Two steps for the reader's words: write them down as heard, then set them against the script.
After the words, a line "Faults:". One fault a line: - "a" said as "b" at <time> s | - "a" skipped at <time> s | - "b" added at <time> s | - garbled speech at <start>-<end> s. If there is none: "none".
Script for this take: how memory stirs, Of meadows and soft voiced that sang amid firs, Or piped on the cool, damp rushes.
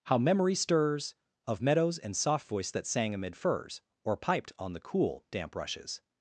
how memory stirs, Of meadows and soft voiced that sang amid firs, Or piped on the cool, damp rushes.
Faults:
none